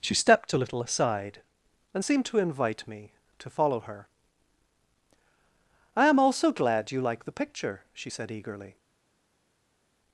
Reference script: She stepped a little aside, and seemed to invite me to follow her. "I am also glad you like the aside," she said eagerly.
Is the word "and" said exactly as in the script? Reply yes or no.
yes